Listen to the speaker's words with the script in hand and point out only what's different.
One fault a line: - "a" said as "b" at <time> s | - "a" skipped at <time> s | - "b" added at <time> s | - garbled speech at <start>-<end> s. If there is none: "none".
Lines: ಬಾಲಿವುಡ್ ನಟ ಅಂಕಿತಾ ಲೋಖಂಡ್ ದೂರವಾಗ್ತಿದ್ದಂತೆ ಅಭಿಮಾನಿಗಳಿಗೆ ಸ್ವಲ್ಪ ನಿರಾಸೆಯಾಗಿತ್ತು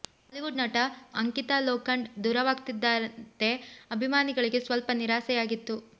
none